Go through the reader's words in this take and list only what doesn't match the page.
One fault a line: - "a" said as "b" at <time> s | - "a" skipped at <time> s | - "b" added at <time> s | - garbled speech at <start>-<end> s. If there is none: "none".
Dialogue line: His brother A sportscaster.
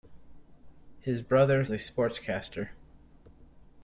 none